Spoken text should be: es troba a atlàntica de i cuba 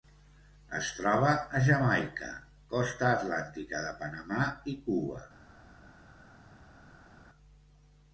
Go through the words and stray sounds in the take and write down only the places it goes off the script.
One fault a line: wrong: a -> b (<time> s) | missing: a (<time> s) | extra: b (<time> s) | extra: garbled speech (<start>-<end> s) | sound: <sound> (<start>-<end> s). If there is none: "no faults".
extra: jamaica costa (1.7 s)
extra: panamà (4.0 s)